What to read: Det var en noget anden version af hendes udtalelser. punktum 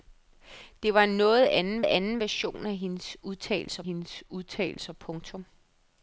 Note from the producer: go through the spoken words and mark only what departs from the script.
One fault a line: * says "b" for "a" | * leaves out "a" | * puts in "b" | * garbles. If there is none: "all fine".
* puts in "anden"
* puts in "hendes udtalelser"